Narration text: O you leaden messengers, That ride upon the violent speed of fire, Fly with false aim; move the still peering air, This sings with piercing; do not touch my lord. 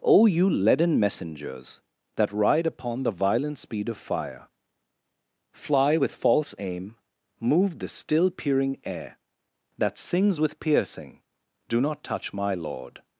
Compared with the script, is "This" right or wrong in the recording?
wrong